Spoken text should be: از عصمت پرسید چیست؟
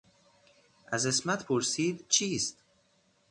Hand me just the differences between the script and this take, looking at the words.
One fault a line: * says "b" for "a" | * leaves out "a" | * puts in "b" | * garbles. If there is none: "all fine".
all fine